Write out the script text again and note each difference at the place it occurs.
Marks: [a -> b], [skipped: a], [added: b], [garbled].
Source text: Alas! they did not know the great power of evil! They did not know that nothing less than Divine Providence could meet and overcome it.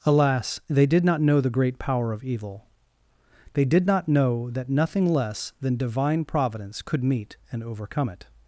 Alas! they did not know the great power of evil! They did not know that nothing less than Divine Providence could meet and overcome it.